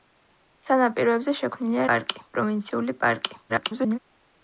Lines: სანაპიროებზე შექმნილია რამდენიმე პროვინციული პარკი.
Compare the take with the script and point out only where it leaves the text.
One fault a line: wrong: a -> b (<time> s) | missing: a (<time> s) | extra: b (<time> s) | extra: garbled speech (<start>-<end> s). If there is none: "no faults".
wrong: რამდენიმე -> პარკი (1.9 s)
extra: garbled speech (3.5-4.0 s)